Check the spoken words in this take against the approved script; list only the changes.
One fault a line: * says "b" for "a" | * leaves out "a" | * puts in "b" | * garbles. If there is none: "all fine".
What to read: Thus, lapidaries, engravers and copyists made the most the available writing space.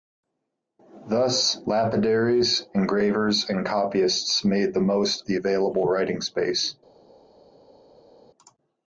all fine